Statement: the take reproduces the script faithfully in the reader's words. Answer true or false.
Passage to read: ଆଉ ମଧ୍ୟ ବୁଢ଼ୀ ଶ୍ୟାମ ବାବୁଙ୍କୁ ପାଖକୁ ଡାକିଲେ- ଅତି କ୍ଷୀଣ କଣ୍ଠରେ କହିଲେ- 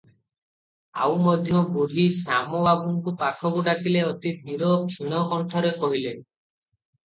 false